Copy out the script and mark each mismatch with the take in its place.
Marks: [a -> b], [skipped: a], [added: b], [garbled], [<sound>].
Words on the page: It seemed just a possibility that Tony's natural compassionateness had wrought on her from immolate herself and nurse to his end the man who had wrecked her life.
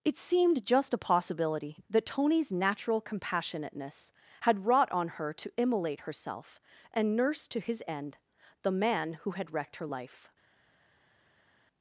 It seemed just a possibility that Tony's natural compassionateness had wrought on her [from -> to] immolate herself and nurse to his end the man who had wrecked her life.